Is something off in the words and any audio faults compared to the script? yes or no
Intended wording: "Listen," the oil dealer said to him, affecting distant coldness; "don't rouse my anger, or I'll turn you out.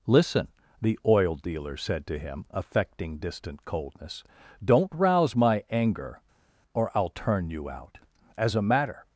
yes